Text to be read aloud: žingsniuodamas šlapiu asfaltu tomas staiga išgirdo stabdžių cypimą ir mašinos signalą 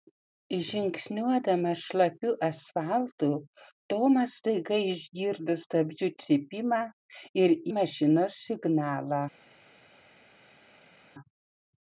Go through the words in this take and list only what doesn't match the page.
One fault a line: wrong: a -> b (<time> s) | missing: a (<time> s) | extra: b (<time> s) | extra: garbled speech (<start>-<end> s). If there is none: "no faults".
no faults